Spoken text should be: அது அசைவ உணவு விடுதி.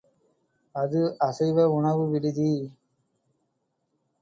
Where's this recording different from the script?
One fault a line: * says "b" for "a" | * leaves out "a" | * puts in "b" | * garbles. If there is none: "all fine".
all fine